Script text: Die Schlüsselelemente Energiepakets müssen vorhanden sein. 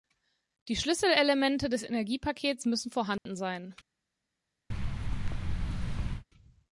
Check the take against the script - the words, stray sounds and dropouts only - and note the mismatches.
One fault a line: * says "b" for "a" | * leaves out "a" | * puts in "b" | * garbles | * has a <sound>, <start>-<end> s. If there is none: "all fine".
* puts in "des"
* has a dropout, 3.2-3.3 s
* has a thud, 4.7-6.2 s